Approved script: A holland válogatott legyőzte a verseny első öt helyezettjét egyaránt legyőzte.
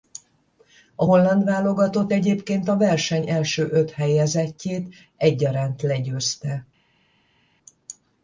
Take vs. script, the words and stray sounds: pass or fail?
fail